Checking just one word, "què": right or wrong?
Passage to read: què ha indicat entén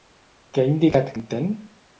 right